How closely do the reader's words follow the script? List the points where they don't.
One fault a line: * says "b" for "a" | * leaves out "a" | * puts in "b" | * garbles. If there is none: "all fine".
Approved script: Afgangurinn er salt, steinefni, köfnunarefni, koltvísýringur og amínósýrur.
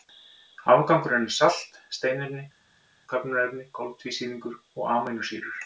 all fine